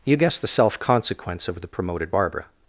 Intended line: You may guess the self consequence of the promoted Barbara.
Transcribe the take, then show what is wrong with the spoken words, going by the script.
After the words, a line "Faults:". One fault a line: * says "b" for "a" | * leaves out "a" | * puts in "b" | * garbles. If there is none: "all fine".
You guess the self consequence of the promoted Barbara.
Faults:
* leaves out "may"